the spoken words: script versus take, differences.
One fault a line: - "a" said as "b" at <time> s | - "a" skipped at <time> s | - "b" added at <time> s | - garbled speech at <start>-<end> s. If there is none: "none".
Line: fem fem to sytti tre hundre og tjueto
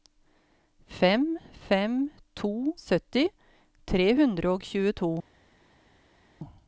none